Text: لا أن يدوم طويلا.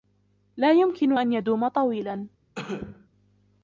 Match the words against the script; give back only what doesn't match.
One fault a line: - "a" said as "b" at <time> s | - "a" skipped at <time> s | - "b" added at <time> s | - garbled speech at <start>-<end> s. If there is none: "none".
- "يمكن" added at 0.7 s